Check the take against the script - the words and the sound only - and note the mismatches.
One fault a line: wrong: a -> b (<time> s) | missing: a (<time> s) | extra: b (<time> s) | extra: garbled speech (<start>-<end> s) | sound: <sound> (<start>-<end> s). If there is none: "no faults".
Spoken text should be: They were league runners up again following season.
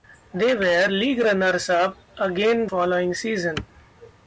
no faults